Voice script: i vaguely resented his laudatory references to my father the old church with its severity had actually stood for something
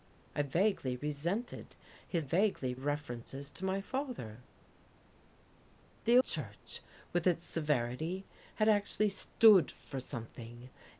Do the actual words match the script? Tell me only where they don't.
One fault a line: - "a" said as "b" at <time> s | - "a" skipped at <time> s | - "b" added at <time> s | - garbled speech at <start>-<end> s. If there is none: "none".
- "laudatory" said as "vaguely" at 2.2 s
- "old" skipped at 6.2 s